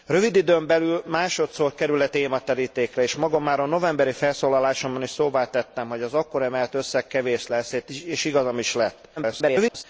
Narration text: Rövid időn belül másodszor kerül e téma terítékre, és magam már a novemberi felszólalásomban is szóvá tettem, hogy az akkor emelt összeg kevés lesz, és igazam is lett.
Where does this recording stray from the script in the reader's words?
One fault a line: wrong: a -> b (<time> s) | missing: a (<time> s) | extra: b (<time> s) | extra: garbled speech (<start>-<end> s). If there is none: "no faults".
extra: garbled speech (9.2-9.8 s)